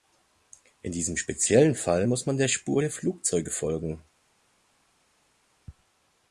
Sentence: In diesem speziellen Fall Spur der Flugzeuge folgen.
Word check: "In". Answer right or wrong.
right